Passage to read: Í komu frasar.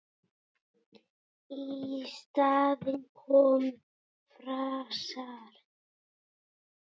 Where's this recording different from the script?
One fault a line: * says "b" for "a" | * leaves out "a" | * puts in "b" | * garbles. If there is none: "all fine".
* puts in "staðinn"